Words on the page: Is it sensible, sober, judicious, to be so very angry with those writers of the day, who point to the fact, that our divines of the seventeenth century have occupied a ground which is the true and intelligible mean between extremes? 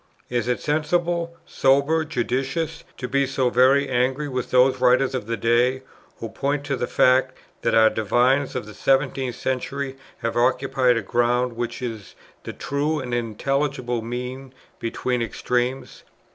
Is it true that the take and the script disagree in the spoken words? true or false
false